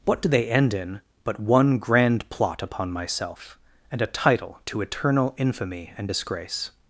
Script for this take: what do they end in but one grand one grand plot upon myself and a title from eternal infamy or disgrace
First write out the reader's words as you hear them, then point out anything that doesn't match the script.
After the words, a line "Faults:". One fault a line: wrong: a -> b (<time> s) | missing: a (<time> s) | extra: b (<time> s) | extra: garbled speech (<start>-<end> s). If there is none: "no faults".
what do they end in but one grand plot upon myself and a title to eternal infamy and disgrace
Faults:
missing: one grand (2.3 s)
wrong: from -> to (4.7 s)
wrong: or -> and (6.0 s)